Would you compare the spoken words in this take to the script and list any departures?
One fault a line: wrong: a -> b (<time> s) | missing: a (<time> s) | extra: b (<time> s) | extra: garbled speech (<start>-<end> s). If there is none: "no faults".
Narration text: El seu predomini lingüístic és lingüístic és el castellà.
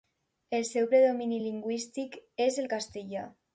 missing: lingüístic és (2.6 s)